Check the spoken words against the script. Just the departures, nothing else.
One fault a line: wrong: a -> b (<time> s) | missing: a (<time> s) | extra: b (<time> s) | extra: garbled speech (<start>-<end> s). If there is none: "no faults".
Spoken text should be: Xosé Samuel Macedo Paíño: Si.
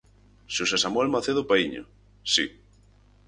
no faults